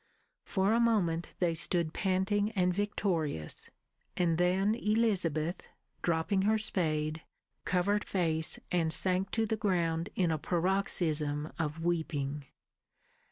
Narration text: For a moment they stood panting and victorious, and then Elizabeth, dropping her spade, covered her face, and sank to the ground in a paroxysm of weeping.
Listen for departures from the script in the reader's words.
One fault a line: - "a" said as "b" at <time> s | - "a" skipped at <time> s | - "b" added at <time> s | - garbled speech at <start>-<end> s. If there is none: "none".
- "her" skipped at 8.1 s